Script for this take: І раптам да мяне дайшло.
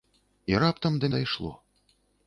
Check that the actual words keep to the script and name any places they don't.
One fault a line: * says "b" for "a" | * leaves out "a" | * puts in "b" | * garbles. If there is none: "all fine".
* leaves out "мяне"